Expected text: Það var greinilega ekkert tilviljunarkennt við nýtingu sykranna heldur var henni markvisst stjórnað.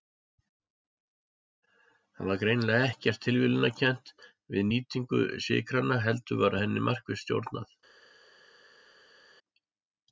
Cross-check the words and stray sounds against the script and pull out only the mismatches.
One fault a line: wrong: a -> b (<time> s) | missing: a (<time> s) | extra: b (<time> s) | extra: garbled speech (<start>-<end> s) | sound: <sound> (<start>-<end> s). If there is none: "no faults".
no faults